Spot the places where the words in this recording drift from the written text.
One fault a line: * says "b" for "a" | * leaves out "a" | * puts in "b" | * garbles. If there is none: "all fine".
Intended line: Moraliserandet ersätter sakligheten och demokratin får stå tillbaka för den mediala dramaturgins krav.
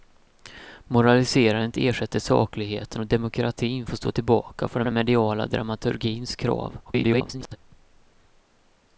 * puts in "den"
* garbles